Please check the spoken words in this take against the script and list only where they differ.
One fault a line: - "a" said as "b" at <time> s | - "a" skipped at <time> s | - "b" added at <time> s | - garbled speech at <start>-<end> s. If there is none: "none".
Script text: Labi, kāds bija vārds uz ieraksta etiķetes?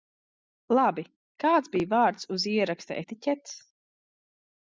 none